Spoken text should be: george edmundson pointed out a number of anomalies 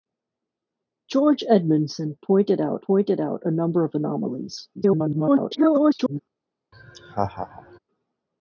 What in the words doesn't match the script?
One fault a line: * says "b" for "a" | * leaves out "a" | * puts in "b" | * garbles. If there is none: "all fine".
* puts in "pointed out"
* garbles